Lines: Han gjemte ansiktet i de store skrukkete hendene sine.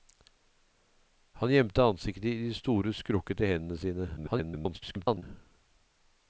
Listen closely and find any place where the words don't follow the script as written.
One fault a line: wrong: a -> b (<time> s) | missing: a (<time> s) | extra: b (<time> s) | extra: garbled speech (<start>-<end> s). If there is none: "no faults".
extra: garbled speech (4.2-5.2 s)